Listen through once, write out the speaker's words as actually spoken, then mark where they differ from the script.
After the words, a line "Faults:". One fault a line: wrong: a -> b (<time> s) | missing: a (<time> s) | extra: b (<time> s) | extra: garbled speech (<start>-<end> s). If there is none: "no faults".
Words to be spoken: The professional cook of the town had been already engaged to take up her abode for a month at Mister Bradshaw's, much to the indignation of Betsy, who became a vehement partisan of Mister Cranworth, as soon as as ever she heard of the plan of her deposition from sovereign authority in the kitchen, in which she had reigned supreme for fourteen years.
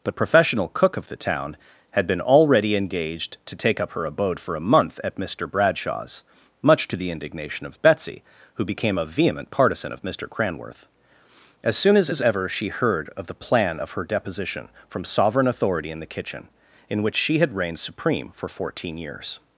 The professional cook of the town had been already engaged to take up her abode for a month at Mister Bradshaw's, much to the indignation of Betsy, who became a vehement partisan of Mister Cranworth, as soon as as ever she heard of the plan of her deposition from sovereign authority in the kitchen, in which she had reigned supreme for fourteen years.
Faults:
no faults